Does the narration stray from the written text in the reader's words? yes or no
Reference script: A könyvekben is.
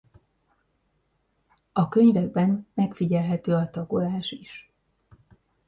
yes